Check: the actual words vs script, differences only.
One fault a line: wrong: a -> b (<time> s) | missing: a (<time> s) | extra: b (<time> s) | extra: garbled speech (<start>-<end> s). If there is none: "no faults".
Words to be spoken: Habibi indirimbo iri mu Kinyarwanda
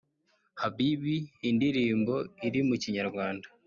no faults